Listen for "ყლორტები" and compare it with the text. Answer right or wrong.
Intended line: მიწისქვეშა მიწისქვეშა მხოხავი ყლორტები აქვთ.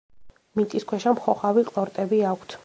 right